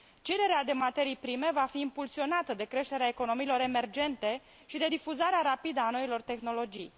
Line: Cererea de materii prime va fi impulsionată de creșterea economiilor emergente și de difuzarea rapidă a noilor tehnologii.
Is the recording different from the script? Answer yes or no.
no